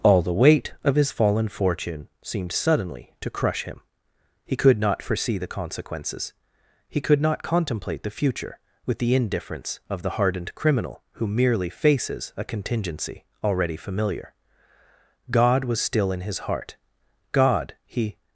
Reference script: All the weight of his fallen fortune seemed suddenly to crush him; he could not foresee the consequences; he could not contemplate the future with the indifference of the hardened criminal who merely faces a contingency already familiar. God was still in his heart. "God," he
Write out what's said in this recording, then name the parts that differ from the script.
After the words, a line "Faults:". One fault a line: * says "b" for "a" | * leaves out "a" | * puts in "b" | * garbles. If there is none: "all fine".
All the weight of his fallen fortune seemed suddenly to crush him; he could not foresee the consequences; he could not contemplate the future with the indifference of the hardened criminal who merely faces a contingency already familiar. God was still in his heart. "God," he
Faults:
all fine